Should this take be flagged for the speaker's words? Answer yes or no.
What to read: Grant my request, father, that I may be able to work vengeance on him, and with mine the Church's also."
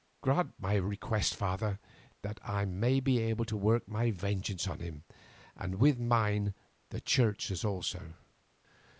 yes